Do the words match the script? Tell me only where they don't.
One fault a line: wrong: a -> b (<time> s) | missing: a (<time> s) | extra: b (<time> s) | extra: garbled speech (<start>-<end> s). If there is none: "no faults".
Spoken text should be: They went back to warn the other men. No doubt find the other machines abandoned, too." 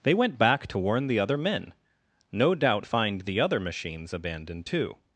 no faults